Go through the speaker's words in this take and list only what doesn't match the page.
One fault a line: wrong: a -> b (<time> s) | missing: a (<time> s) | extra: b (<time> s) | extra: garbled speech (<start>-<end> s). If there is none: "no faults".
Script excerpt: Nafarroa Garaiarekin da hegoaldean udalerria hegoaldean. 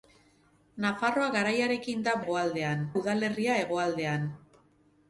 no faults